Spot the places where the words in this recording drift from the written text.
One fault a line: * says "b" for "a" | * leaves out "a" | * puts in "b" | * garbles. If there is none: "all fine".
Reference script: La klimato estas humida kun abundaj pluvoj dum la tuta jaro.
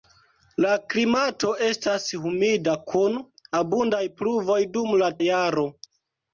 * leaves out "tuta"